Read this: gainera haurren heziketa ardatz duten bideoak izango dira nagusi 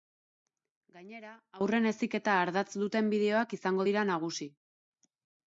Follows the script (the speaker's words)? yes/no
yes